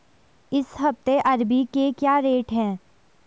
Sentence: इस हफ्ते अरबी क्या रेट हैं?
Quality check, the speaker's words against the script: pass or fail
fail